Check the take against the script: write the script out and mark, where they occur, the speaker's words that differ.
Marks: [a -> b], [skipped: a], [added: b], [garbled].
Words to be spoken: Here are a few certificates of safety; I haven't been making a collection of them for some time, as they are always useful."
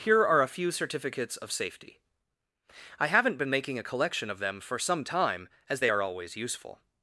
Here are a few certificates of safety; I haven't been making a collection of them for some time, as they are always useful."